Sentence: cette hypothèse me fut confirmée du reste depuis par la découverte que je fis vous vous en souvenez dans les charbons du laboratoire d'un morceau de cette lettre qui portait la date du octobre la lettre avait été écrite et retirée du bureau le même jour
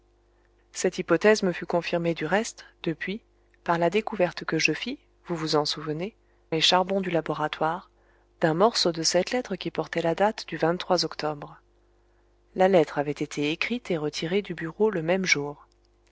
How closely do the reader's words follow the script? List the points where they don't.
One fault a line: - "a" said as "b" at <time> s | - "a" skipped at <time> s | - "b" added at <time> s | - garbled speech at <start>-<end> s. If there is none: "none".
- "dans" skipped at 6.2 s